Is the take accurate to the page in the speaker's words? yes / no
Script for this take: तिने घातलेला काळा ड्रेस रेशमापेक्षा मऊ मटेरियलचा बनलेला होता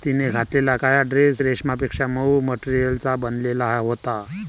yes